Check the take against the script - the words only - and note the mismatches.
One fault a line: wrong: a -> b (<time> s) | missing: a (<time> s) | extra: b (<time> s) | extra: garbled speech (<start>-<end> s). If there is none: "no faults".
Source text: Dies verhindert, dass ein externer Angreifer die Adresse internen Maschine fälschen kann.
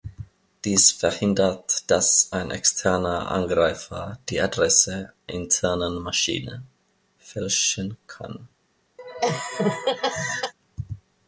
no faults